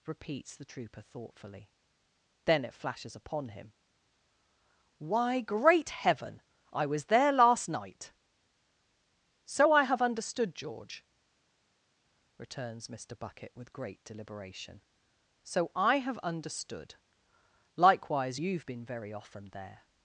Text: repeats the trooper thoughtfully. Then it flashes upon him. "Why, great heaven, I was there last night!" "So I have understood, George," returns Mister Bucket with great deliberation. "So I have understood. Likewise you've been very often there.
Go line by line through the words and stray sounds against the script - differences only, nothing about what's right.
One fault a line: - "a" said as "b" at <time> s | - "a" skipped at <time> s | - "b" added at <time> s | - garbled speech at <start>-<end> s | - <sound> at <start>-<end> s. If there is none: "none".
none